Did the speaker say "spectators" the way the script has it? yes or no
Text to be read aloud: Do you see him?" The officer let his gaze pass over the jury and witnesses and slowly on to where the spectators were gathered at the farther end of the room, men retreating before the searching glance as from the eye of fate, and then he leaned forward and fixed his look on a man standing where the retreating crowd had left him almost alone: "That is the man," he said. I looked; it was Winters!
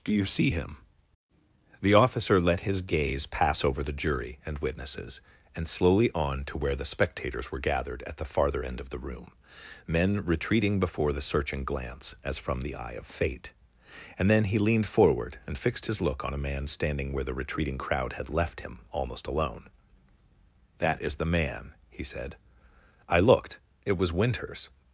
yes